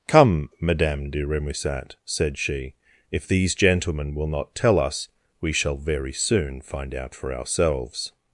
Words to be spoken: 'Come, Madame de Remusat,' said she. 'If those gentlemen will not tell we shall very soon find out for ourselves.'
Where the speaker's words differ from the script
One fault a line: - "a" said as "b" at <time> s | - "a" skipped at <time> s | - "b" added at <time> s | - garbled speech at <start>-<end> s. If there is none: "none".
- "those" said as "these" at 3.3 s
- "us" added at 4.8 s